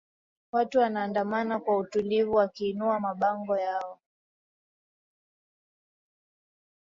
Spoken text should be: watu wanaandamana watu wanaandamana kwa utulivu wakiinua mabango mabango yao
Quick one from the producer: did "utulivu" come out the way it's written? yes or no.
yes